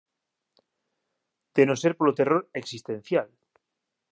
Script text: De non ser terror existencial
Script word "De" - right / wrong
right